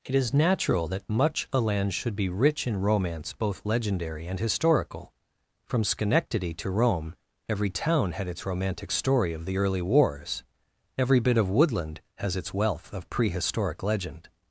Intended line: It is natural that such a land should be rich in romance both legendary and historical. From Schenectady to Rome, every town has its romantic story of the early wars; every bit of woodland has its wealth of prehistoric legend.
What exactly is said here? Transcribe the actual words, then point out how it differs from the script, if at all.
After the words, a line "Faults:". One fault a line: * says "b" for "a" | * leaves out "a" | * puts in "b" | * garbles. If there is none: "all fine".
It is natural that much a land should be rich in romance both legendary and historical. From Schenectady to Rome, every town had its romantic story of the early wars; every bit of woodland has its wealth of prehistoric legend.
Faults:
* says "much" for "such"
* says "had" for "has"